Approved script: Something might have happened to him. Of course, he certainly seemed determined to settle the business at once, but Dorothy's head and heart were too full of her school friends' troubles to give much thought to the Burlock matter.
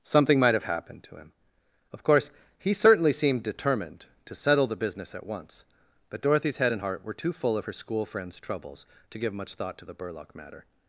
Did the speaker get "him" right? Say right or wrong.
right